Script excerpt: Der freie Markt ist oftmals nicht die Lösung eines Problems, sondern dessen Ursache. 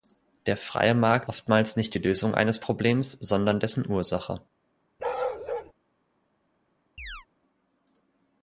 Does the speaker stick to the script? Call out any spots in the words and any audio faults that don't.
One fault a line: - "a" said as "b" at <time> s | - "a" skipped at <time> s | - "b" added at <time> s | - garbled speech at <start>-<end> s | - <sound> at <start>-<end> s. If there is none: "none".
- "ist" skipped at 1.3 s
- bark at 5.0-5.7 s
- chirp at 7.0-7.3 s